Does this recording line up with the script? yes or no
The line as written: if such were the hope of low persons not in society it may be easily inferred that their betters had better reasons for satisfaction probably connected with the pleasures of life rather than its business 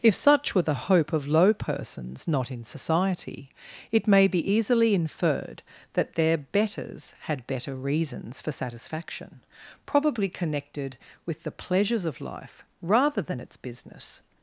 yes